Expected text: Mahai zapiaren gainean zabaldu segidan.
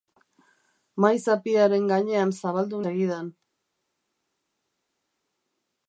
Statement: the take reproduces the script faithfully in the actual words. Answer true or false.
true